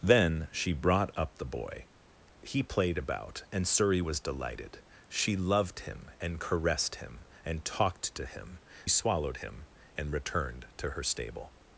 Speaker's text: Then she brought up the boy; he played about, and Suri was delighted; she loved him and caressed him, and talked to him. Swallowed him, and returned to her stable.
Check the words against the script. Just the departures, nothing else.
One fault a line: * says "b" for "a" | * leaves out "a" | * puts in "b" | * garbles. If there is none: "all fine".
all fine